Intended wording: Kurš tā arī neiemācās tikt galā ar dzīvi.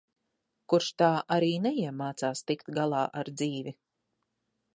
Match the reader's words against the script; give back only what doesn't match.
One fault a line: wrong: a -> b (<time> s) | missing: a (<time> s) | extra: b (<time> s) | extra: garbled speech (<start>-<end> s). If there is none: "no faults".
no faults